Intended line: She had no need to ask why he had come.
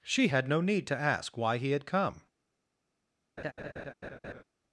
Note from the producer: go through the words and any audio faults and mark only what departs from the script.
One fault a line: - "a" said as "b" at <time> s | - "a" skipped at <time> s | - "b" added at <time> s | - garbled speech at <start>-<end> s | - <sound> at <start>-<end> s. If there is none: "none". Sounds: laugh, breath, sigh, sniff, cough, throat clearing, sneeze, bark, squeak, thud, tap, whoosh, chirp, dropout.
- laugh at 3.4-4.4 s